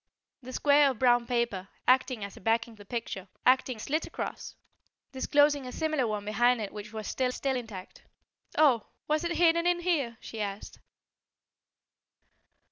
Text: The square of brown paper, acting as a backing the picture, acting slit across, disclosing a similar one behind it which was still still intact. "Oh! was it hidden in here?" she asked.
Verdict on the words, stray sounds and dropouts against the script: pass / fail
pass